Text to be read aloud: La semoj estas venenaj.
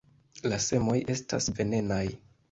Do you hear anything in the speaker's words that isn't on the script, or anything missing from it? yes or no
no